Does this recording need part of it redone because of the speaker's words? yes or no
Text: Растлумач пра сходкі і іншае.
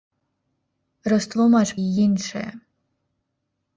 yes